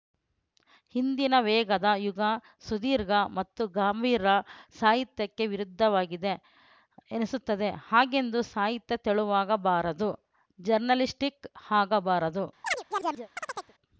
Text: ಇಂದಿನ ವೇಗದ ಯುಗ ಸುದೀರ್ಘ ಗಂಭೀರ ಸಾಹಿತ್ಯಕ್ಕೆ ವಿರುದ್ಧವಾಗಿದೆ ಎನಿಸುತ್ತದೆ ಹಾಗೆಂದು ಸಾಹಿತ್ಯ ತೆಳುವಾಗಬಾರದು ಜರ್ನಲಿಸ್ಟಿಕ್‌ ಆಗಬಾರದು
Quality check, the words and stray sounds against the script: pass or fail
fail